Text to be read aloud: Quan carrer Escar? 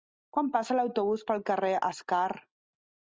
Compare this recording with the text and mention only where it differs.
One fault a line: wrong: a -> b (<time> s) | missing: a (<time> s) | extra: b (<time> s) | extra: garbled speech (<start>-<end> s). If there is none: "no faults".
extra: passa l'autobús pel (0.5 s)